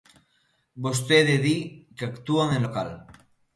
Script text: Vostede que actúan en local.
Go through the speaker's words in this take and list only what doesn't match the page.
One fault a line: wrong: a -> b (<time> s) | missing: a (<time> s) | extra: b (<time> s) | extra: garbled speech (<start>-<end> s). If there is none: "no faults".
extra: di (1.4 s)